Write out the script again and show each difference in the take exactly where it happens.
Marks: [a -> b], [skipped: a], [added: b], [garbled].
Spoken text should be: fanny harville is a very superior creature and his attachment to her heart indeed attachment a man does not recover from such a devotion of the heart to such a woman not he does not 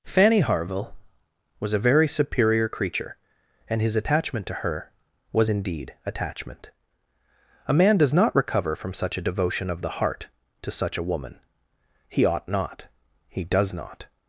fanny harville [is -> was] a very superior creature and his attachment to her [heart -> was] indeed attachment a man does not recover from such a devotion of the heart to such a woman [added: he ought] not he does not